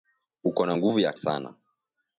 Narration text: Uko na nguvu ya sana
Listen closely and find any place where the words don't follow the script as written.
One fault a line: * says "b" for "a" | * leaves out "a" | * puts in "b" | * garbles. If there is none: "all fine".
all fine